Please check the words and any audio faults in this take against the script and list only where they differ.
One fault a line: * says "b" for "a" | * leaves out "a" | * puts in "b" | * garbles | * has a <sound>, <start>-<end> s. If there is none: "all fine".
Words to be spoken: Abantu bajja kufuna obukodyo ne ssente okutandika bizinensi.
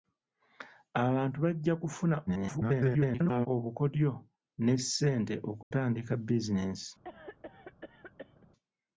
* garbles
* has a dropout, 5.6-5.7 s
* has a cough, 7.0-8.5 s